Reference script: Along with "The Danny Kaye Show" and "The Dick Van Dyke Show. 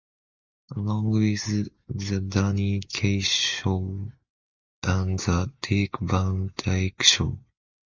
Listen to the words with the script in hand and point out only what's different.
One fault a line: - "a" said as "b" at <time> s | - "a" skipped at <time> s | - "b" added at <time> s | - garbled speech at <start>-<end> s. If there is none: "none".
none